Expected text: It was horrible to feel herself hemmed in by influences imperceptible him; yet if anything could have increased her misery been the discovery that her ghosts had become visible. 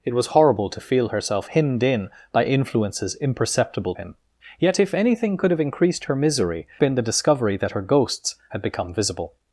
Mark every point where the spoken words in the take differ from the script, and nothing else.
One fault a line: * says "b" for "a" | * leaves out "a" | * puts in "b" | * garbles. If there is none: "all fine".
all fine